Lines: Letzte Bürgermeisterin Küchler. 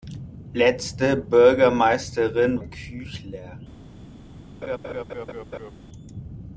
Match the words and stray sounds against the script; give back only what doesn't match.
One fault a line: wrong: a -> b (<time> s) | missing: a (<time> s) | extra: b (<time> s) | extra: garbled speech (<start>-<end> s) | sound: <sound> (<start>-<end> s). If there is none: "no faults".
sound: laugh (4.6-5.7 s)